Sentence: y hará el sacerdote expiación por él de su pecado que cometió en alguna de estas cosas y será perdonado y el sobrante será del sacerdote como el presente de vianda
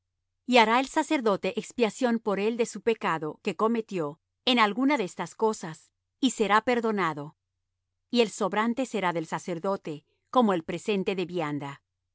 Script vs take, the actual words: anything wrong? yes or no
no